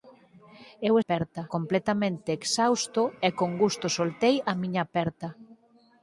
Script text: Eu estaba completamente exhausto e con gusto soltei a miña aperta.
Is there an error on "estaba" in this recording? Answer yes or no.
yes